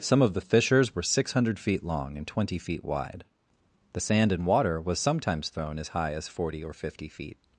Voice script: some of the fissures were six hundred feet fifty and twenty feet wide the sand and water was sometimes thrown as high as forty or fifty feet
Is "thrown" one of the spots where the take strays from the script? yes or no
no